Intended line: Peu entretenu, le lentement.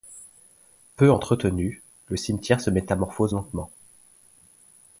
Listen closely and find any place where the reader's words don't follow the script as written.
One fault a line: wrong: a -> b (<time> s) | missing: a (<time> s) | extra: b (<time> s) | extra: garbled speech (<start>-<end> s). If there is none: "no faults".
extra: cimetière se métamorphose (2.1 s)